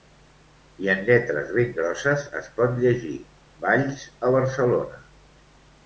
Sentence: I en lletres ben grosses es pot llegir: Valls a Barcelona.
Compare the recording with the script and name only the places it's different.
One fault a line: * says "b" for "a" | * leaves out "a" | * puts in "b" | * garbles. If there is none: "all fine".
all fine